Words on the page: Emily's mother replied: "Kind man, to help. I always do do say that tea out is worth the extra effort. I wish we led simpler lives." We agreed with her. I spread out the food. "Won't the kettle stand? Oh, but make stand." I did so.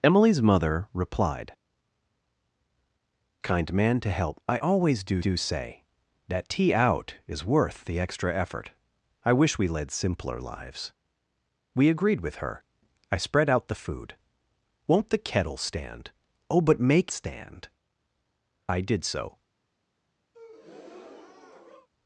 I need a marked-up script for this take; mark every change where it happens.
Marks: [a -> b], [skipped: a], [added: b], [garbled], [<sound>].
Emily's mother replied: "Kind man, to help. I always do do say that tea out is worth the extra effort. I wish we led simpler lives." We agreed with her. I spread out the food. "Won't the kettle stand? Oh, but make stand." I did so. [breath]